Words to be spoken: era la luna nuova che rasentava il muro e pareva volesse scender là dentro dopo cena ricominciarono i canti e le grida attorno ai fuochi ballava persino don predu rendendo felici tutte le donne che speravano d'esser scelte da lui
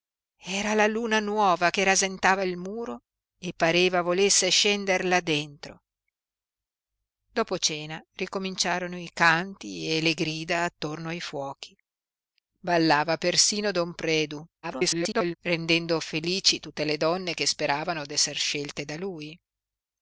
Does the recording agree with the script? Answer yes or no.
no